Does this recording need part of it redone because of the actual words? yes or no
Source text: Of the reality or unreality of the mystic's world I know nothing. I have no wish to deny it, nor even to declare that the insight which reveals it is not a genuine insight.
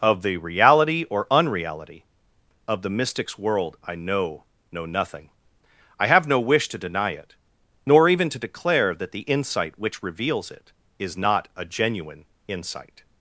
yes